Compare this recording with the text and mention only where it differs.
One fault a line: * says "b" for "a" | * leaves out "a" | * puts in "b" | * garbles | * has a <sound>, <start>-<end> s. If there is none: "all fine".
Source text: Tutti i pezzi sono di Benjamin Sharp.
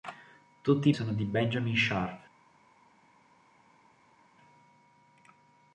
* leaves out "pezzi"